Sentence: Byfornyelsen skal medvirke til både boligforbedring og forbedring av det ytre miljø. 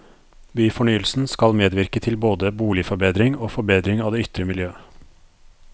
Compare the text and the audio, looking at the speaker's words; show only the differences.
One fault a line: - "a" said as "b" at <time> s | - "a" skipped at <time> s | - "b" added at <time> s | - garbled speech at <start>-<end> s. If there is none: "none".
none